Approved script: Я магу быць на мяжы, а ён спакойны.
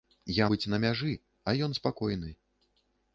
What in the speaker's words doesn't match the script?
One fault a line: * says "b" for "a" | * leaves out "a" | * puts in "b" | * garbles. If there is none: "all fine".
* leaves out "магу"